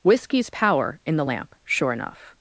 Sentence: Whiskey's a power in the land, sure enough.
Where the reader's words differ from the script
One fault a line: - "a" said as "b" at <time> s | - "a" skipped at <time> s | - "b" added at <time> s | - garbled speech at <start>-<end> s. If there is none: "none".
- "a" skipped at 0.5 s
- "land" said as "lamp" at 1.2 s